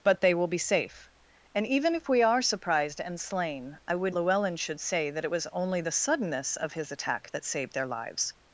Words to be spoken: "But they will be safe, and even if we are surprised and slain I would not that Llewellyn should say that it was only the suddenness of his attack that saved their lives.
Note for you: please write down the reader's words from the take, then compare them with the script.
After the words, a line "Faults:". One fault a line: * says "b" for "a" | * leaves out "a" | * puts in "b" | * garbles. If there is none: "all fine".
"But they will be safe, and even if we are surprised and slain I would Llewellyn should say that it was only the suddenness of his attack that saved their lives.
Faults:
* leaves out "not that"